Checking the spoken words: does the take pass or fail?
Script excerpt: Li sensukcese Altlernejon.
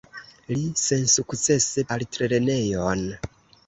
pass